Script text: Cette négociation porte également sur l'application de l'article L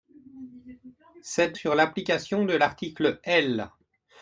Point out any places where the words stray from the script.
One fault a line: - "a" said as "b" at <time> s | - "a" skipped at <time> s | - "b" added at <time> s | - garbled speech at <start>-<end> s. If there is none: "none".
- "négociation porte également" skipped at 1.6 s